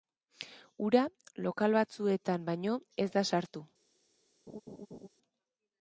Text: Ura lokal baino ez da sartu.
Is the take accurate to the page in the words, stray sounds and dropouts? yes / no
no